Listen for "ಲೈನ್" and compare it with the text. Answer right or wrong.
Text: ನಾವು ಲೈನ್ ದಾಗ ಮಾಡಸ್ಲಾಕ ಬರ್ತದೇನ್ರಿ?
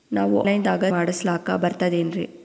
right